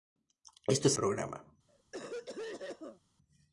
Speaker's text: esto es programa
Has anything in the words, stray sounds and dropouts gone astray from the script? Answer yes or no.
yes